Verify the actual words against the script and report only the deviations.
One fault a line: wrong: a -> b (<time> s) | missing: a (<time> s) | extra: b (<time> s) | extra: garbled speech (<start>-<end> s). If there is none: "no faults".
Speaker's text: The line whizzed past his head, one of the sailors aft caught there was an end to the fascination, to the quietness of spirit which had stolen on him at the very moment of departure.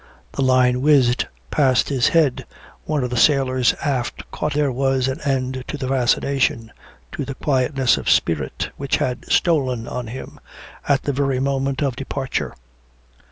no faults